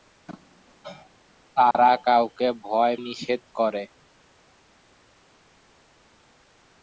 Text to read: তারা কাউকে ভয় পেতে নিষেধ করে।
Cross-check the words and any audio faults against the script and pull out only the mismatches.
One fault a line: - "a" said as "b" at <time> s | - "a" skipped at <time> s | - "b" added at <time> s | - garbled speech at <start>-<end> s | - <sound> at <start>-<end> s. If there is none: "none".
- dropout at 1.7-1.7 s
- "পেতে" skipped at 3.0 s